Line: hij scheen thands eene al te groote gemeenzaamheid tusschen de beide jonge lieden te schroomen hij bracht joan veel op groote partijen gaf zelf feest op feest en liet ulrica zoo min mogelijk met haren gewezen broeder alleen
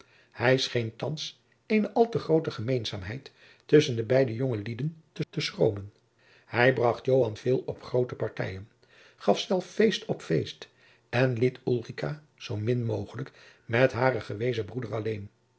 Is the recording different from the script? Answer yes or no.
yes